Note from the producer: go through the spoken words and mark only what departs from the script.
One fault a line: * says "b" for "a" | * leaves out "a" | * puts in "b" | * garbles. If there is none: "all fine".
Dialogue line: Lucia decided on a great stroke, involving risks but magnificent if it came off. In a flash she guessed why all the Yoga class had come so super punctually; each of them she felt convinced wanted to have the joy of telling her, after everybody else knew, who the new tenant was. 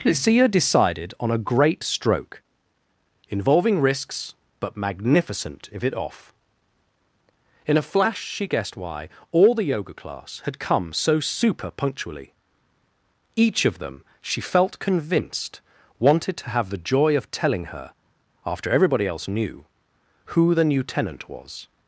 * leaves out "came"